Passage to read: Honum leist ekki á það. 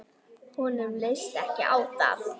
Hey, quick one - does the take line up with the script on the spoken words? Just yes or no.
yes